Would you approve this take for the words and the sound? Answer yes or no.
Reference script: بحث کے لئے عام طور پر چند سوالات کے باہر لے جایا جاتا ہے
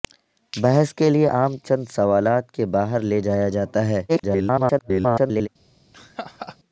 no